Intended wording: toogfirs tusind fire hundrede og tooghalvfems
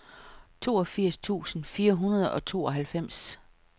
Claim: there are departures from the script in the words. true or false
false